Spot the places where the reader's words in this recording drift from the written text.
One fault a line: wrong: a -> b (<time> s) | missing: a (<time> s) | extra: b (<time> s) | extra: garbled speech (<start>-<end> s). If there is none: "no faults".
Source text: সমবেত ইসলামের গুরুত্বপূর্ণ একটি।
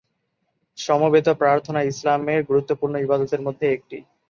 extra: প্রার্থনা (1.4 s)
extra: ইবাদতের মধ্যে (3.0 s)